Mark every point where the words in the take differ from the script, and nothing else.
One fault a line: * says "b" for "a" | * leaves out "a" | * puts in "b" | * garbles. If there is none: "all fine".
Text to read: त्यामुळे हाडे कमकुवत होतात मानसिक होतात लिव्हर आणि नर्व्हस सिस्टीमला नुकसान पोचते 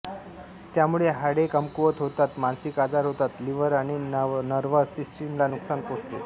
* puts in "आजार"